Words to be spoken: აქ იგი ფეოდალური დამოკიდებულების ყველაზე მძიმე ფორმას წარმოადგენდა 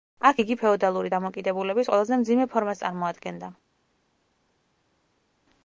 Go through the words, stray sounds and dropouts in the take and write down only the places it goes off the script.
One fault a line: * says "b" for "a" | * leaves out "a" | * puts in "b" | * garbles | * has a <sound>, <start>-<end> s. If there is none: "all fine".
all fine